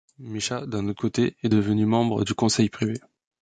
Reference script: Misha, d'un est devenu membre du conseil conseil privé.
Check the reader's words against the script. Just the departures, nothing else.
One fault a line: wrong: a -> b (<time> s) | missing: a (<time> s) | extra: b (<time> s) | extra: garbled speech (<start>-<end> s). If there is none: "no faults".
extra: autre côté (0.9 s)
missing: conseil (2.7 s)